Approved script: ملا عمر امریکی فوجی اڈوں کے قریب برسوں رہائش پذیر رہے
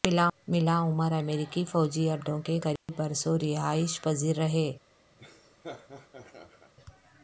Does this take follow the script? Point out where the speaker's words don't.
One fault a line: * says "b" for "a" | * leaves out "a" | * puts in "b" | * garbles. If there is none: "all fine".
all fine